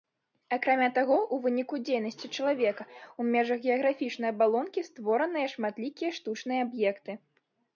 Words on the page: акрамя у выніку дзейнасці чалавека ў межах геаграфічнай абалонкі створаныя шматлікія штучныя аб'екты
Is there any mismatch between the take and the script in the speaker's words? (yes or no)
yes